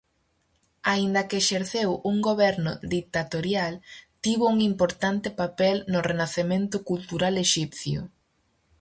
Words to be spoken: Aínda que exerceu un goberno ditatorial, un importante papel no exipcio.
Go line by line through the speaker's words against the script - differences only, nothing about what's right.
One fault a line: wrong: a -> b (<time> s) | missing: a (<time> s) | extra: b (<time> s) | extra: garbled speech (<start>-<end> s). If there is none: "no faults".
extra: tivo (4.2 s)
extra: renacemento cultural (6.1 s)